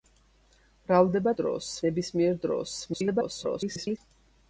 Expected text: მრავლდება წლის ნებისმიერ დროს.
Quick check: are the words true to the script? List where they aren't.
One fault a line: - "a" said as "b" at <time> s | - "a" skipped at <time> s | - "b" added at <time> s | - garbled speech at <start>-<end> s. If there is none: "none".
- "წლის" said as "დროს" at 1.4 s
- garbled speech at 2.8-4.0 s